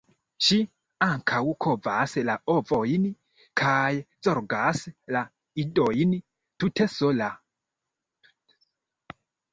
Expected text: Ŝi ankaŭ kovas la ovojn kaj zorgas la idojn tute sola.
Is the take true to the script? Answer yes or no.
yes